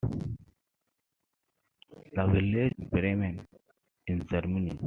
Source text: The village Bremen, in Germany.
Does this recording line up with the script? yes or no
yes